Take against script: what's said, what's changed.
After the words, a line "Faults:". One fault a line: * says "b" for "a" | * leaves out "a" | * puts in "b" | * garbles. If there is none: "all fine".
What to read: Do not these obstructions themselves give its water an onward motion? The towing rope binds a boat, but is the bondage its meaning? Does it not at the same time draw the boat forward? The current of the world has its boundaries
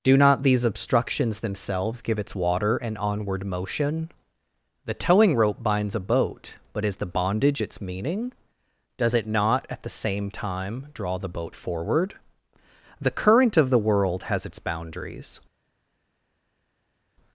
Do not these obstructions themselves give its water an onward motion? The towing rope binds a boat, but is the bondage its meaning? Does it not at the same time draw the boat forward? The current of the world has its boundaries
Faults:
all fine